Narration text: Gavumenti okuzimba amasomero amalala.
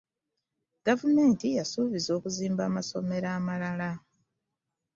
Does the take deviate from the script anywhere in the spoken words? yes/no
yes